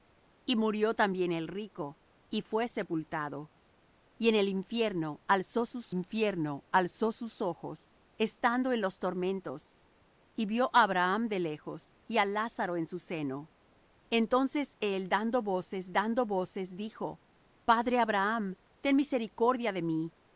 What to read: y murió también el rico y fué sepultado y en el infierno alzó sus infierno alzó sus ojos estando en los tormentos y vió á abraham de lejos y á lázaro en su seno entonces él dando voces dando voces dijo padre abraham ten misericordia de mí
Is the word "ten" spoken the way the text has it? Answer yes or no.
yes